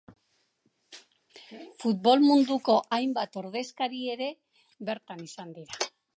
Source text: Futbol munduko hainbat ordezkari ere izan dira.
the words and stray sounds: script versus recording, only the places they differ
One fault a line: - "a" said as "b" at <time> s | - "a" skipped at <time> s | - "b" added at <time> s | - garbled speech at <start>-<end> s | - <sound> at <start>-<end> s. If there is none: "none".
- "bertan" added at 4.9 s